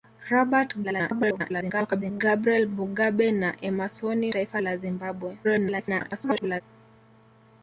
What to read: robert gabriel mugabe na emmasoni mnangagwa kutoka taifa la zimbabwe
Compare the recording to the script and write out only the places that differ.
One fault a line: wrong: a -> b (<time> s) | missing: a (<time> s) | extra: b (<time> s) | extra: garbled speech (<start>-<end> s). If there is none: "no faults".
extra: garbled speech (0.8-2.2 s)
missing: mnangagwa kutoka (4.3 s)
extra: garbled speech (5.4-6.6 s)